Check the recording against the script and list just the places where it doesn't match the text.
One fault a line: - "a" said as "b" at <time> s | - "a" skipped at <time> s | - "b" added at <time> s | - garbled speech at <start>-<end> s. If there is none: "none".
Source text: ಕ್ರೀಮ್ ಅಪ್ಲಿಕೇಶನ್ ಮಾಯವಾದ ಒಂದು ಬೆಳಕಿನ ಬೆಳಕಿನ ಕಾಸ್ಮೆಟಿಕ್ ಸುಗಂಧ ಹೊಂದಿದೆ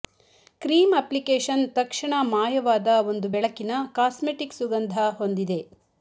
- "ತಕ್ಷಣ" added at 1.8 s
- "ಬೆಳಕಿನ" skipped at 3.7 s